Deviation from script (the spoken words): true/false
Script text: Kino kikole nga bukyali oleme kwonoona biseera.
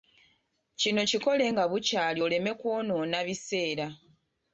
false